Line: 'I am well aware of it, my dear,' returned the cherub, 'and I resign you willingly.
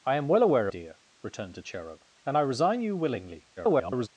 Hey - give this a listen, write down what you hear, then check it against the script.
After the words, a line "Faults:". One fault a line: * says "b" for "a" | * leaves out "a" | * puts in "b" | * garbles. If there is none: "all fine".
'I am well aware dear,' returned the cherub, 'and I resign you willingly. [garbled]
Faults:
* leaves out "of it my"
* garbles